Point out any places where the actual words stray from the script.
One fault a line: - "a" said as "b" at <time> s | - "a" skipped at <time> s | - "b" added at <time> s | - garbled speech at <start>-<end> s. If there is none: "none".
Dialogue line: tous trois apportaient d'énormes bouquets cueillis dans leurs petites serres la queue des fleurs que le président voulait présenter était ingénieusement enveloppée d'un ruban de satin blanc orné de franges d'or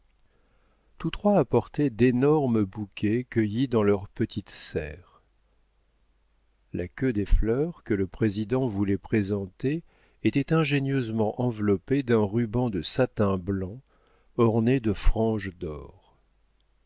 none